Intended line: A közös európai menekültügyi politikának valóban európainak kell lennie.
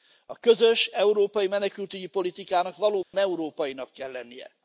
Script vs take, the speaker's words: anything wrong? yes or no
no